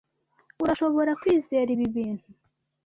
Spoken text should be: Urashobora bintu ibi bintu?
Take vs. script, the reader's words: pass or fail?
fail